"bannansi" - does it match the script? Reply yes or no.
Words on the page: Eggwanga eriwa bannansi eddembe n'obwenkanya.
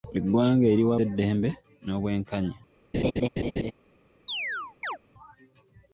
no